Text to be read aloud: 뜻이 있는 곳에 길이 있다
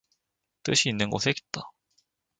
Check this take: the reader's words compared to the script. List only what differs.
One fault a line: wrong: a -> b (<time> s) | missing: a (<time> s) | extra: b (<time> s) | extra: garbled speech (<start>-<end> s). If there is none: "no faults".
missing: 길이 (1.3 s)